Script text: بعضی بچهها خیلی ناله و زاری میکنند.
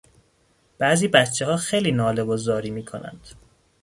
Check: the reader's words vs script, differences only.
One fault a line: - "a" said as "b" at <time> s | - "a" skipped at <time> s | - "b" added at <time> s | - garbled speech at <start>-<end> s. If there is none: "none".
none